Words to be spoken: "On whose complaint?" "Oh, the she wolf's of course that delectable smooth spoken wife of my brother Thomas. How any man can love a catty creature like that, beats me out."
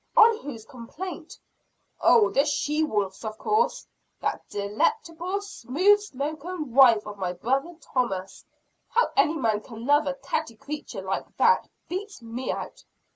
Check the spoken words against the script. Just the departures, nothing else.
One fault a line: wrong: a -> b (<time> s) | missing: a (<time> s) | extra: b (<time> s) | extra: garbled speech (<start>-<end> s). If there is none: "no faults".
no faults